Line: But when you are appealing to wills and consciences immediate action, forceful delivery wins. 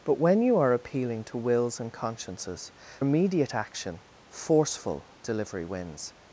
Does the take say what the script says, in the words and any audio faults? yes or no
yes